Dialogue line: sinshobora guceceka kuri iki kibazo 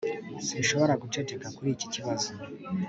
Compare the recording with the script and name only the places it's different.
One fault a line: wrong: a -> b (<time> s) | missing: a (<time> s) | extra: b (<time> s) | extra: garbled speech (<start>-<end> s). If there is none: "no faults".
no faults